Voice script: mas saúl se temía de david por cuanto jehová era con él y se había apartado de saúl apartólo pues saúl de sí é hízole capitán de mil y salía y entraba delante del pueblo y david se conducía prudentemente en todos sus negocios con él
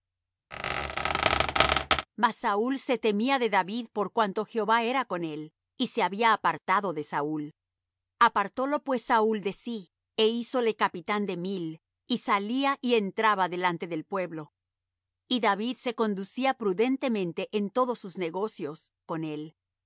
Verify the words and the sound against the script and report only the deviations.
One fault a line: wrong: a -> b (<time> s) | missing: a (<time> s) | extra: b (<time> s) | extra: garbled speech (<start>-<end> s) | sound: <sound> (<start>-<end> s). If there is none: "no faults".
sound: squeak (0.5-2.1 s)